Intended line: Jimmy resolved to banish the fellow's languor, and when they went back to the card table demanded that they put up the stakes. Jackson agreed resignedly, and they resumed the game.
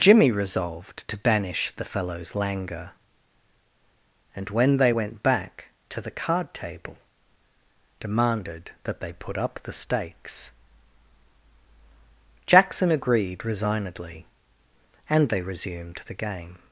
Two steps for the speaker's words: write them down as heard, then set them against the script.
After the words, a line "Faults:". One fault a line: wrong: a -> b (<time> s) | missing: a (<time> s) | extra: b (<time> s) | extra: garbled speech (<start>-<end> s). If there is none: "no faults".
Jimmy resolved to banish the fellow's languor, and when they went back to the card table demanded that they put up the stakes. Jackson agreed resignedly, and they resumed the game.
Faults:
no faults